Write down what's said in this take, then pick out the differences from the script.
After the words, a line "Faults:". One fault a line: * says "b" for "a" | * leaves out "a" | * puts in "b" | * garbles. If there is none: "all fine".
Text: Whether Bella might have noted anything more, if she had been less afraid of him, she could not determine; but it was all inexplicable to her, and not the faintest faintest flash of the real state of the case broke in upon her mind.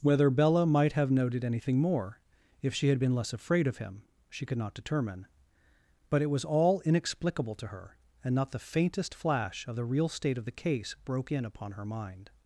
Whether Bella might have noted anything more, if she had been less afraid of him, she could not determine; but it was all inexplicable to her, and not the faintest flash of the real state of the case broke in upon her mind.
Faults:
* leaves out "faintest"